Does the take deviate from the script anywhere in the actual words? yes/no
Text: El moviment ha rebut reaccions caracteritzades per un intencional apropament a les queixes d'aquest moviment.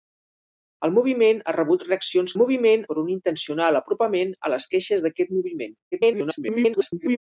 yes